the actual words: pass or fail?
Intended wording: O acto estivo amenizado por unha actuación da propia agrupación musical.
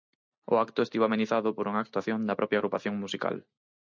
pass